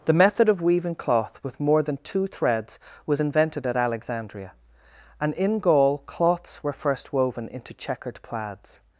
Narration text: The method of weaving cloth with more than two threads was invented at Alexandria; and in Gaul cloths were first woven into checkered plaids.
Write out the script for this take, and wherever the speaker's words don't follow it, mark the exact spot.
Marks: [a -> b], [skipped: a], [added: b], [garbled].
The method of weaving cloth with more than two threads was invented at Alexandria; and in Gaul cloths were first woven into checkered plaids.